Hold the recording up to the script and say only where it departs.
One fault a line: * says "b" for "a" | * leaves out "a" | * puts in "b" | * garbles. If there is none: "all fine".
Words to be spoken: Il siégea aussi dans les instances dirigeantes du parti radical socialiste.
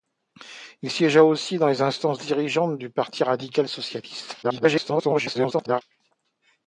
* garbles